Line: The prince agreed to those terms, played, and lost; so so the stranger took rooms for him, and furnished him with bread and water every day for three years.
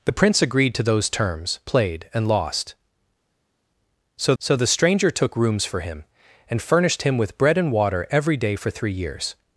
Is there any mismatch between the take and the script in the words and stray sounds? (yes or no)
no